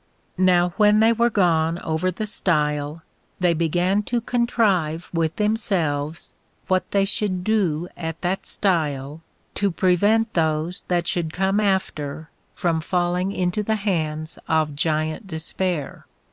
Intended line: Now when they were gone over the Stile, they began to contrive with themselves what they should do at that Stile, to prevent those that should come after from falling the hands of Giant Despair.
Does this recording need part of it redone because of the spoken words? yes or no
yes